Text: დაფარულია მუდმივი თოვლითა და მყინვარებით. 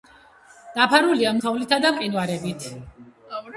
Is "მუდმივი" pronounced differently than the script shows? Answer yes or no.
yes